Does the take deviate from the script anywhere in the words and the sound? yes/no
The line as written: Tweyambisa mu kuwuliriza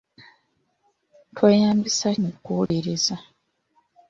yes